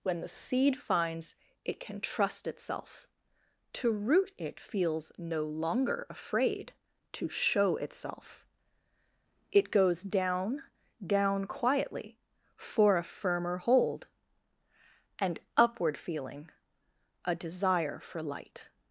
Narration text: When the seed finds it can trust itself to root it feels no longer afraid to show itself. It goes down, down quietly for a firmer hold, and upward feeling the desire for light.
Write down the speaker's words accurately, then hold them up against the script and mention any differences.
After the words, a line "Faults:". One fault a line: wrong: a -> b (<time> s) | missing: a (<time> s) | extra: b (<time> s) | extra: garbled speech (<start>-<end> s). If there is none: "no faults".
When the seed finds it can trust itself to root it feels no longer afraid to show itself. It goes down, down quietly for a firmer hold, and upward feeling a desire for light.
Faults:
wrong: the -> a (17.2 s)